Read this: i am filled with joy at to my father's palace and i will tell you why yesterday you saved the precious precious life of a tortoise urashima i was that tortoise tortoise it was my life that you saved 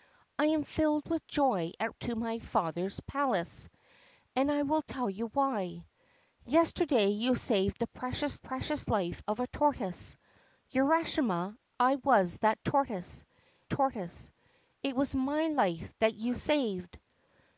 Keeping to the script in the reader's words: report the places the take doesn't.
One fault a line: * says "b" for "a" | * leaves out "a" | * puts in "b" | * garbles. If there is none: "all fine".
all fine